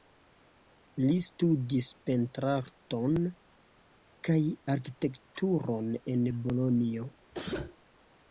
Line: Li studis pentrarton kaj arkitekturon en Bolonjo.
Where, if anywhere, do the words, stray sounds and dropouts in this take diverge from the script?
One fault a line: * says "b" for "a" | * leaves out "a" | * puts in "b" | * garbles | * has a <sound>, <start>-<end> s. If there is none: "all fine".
* has a sneeze, 7.3-7.8 s